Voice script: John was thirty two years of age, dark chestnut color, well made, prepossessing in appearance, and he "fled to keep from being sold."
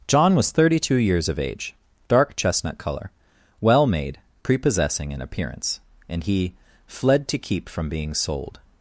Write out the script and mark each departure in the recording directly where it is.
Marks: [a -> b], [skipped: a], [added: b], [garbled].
John was thirty two years of age, dark chestnut color, well made, prepossessing in appearance, and he "fled to keep from being sold."